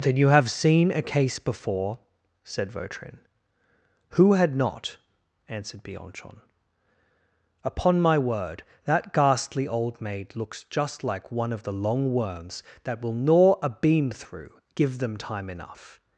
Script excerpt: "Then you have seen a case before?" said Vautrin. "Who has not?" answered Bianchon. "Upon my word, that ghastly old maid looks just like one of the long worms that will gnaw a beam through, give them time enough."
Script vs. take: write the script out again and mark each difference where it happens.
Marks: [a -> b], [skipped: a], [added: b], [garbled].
"Then you have seen a case before?" said Vautrin. "Who [has -> had] not?" answered Bianchon. "Upon my word, that ghastly old maid looks just like one of the long worms that will gnaw a beam through, give them time enough."